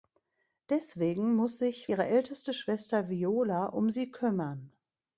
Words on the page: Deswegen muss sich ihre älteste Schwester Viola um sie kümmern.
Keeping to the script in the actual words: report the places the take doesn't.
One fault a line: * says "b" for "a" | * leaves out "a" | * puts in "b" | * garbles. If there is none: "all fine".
all fine